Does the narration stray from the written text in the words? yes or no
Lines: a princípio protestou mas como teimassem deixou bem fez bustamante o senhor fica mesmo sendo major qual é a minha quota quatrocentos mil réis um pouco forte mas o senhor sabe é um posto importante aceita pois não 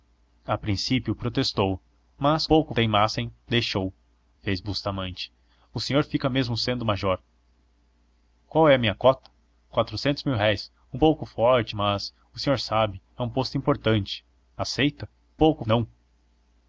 yes